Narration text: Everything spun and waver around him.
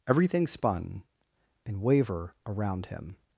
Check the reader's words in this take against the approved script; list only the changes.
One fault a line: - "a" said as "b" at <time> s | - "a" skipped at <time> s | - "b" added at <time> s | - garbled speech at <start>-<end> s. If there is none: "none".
none